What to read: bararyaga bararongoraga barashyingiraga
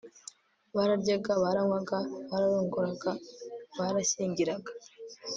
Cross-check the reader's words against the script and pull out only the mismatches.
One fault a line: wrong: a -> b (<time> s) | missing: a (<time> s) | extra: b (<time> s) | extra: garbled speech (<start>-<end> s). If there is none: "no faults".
extra: baranywaga (1.4 s)